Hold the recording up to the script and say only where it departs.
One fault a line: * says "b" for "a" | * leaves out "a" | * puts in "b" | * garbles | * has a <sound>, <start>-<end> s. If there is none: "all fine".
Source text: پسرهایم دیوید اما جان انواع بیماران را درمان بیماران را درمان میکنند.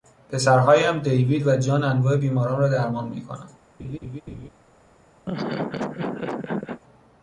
* says "و" for "اما"
* leaves out "بیماران را درمان"
* has a laugh, 3.8-4.5 s
* has a laugh, 5.3-6.8 s